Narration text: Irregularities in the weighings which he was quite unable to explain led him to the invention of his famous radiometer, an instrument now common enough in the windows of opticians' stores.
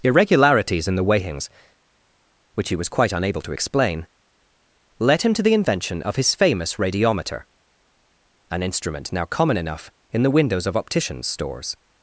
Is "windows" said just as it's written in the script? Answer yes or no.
yes